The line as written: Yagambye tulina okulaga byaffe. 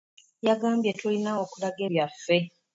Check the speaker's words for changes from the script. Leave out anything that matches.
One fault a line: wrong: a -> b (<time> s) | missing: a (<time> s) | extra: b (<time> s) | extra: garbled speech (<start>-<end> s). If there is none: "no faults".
no faults